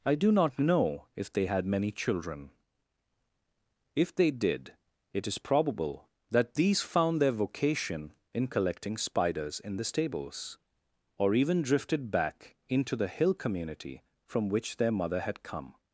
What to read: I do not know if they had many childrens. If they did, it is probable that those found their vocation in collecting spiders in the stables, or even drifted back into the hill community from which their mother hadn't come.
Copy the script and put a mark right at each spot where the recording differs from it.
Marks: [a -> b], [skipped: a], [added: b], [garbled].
I do not know if they had many [childrens. -> children] If they did, it is probable that [those -> these] found their vocation in collecting spiders in the stables, or even drifted back into the hill community from which their mother [hadn't -> had] come.